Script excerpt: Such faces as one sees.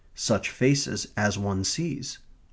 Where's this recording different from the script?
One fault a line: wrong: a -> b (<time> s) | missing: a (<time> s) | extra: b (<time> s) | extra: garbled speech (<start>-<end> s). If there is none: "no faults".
no faults